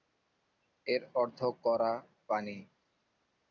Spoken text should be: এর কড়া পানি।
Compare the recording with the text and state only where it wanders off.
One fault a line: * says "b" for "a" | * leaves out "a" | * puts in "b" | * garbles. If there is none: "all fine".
* puts in "অর্থ"